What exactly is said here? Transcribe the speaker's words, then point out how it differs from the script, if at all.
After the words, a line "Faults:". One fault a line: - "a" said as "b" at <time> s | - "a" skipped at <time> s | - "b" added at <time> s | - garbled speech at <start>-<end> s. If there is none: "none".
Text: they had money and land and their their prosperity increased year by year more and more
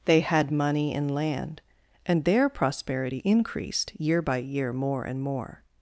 they had money and land and their prosperity increased year by year more and more
Faults:
- "their" skipped at 2.5 s